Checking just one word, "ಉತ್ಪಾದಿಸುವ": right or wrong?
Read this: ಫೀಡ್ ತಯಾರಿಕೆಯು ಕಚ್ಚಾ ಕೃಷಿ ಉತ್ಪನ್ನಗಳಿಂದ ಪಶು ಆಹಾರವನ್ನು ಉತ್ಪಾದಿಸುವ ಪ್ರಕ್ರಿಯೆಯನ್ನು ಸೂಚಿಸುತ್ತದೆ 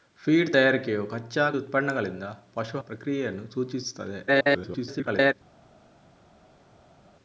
wrong